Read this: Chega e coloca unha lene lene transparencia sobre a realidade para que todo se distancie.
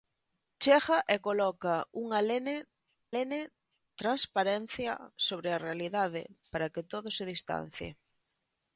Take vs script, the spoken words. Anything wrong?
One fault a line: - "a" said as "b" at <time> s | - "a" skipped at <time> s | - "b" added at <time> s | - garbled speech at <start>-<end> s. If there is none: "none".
none